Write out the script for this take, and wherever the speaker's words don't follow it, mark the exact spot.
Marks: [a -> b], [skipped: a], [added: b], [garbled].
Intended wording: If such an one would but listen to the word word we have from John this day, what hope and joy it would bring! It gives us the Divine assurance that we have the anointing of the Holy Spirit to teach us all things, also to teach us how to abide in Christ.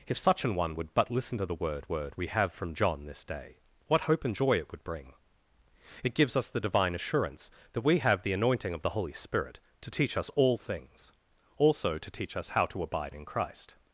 If such an one would but listen to the word word we have from John this day, what hope and joy it would bring! It gives us the Divine assurance that we have the anointing of the Holy Spirit to teach us all things, also to teach us how to abide in Christ.